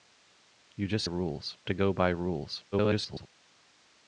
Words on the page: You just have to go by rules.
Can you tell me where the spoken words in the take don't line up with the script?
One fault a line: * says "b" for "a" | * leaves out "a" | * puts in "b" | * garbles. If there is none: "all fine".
* says "rules" for "have"
* garbles